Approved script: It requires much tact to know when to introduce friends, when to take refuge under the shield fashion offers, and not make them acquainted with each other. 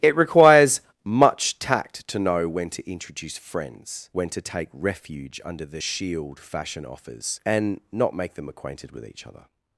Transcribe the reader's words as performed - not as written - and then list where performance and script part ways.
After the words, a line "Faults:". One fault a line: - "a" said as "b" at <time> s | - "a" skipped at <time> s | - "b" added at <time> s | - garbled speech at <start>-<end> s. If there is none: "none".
It requires much tact to know when to introduce friends, when to take refuge under the shield fashion offers, and not make them acquainted with each other.
Faults:
none